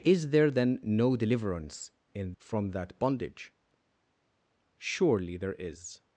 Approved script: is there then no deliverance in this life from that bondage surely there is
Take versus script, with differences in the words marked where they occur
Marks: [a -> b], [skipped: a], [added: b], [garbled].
is there then no deliverance in [skipped: this life] from that bondage surely there is